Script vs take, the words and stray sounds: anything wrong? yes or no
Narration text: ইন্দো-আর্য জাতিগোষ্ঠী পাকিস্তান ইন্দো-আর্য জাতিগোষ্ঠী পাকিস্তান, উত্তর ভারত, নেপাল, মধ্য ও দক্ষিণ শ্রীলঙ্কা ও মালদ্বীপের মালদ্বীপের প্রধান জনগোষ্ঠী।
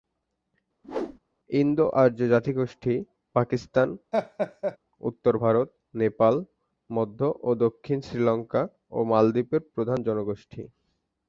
yes